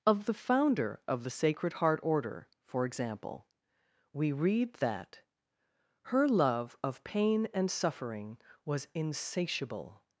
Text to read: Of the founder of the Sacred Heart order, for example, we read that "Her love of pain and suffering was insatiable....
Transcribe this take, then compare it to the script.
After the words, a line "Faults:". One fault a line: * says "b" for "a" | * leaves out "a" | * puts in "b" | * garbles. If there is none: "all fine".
Of the founder of the Sacred Heart order, for example, we read that "Her love of pain and suffering was insatiable....
Faults:
all fine